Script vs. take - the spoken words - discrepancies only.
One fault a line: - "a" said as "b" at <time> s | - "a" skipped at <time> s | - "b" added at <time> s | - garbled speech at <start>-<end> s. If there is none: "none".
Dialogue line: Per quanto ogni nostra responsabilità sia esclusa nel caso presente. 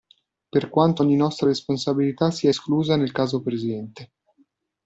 none